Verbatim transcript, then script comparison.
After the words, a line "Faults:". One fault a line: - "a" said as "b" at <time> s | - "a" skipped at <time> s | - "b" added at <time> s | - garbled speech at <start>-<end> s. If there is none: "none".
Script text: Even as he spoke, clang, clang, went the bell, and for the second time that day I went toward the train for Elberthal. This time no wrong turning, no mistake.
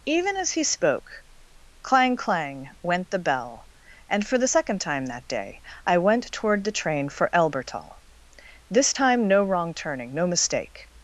Even as he spoke, clang, clang, went the bell, and for the second time that day I went toward the train for Elberthal. This time no wrong turning, no mistake.
Faults:
none